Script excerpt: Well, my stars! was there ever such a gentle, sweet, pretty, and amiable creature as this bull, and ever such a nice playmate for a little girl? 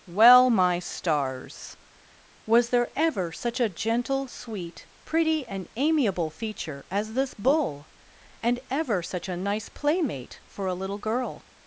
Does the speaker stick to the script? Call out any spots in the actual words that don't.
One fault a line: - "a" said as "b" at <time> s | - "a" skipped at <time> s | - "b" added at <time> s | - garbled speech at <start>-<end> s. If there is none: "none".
- "creature" said as "feature" at 6.3 s